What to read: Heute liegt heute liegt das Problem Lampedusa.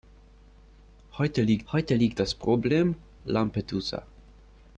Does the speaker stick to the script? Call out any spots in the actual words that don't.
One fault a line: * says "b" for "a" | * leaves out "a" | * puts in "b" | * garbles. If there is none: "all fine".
all fine